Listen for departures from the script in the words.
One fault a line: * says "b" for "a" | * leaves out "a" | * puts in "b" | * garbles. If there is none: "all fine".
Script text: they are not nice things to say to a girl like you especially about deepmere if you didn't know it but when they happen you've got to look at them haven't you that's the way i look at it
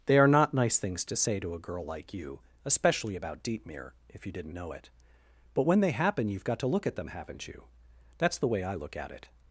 all fine